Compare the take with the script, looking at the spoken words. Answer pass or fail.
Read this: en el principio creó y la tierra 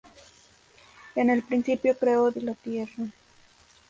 pass